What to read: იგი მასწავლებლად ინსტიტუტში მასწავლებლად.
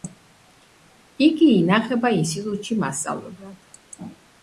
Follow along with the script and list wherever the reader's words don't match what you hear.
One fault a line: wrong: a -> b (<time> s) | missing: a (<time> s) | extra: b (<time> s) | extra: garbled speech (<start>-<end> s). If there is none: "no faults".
wrong: მასწავლებლად -> ინახება (1.6 s)